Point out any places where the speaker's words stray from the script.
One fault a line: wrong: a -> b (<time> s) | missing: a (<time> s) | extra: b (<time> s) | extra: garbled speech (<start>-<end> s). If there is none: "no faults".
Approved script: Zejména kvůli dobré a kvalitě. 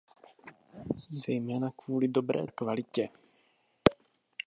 no faults